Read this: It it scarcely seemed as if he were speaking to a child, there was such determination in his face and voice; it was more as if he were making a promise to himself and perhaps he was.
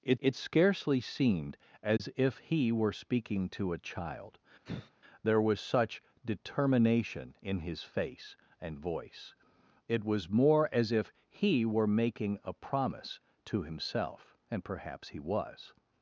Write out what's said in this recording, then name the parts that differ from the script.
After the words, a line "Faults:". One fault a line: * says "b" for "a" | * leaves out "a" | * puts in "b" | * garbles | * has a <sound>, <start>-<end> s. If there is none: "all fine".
It it scarcely seemed as if he were speaking to a child, there was such determination in his face and voice; it was more as if he were making a promise to himself and perhaps he was.
Faults:
* has a dropout, 2.0-2.0 s
* has a sigh, 4.7-4.9 s